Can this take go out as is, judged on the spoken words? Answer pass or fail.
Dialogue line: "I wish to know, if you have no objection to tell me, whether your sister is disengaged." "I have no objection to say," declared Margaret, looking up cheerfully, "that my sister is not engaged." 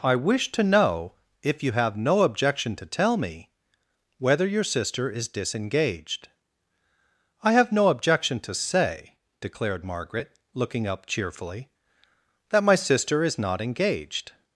pass